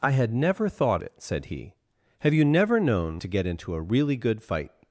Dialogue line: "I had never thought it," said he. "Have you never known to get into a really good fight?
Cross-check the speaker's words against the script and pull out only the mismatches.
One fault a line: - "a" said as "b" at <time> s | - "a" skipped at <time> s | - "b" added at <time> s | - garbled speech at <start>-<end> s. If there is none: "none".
none